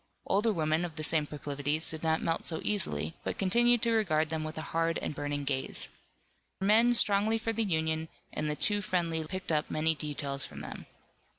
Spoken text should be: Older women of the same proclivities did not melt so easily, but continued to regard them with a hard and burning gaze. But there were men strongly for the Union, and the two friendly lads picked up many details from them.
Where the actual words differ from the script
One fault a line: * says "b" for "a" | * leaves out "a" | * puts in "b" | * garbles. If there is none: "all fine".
* leaves out "But there were"
* leaves out "lads"